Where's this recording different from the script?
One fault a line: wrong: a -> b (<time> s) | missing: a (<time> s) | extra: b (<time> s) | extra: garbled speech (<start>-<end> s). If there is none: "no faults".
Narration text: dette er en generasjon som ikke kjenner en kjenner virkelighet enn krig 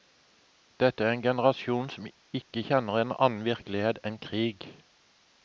wrong: kjenner -> annen (3.3 s)